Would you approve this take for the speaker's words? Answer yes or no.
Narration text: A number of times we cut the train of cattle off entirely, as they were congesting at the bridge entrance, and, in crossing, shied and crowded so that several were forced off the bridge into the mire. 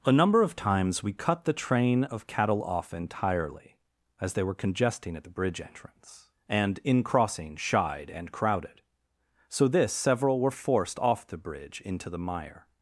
no